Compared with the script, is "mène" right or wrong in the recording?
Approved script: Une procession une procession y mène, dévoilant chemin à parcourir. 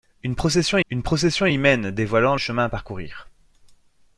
right